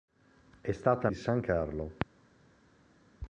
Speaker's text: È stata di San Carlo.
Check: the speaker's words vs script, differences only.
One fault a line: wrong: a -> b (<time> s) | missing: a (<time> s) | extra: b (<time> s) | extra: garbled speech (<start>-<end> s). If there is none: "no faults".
no faults